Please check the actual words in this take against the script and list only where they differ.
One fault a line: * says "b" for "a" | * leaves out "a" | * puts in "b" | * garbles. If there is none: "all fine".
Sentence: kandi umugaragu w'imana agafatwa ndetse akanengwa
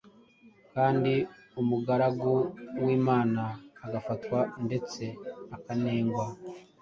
all fine